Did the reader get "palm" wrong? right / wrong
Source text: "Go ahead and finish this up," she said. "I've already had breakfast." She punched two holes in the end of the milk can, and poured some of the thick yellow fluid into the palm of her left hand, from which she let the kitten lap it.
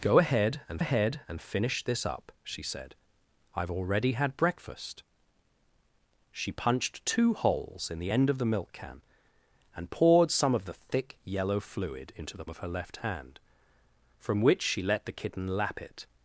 wrong